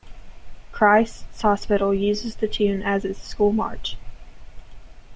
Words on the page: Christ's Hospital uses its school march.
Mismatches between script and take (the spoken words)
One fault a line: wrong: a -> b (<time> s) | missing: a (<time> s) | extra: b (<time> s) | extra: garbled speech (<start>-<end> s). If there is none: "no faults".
extra: the tune as (2.4 s)